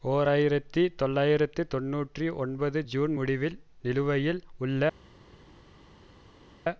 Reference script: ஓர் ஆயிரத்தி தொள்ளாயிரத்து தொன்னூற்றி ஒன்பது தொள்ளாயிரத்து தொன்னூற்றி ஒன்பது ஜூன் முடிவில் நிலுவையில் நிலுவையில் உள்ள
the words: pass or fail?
fail